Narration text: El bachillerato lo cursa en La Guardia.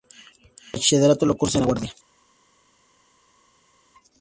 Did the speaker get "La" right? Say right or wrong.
right